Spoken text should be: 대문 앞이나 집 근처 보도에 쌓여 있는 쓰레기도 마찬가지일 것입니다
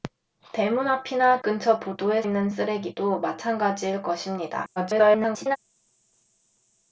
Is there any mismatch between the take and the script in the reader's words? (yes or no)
yes